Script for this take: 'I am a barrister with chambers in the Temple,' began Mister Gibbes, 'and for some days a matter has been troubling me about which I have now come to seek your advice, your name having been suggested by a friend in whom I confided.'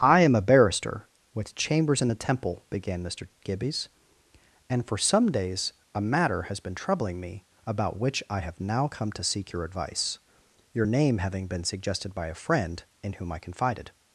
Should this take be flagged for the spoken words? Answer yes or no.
no